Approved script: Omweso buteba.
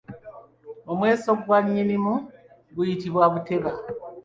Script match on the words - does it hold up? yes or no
no